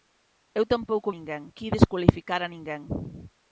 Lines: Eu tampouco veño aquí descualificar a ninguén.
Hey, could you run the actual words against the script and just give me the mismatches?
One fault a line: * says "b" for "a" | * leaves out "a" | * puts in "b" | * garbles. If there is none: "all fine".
* says "ninguén" for "veño"